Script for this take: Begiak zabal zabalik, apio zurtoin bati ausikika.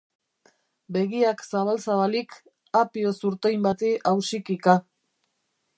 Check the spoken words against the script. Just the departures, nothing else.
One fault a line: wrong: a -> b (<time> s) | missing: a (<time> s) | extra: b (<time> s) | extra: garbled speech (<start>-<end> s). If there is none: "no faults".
no faults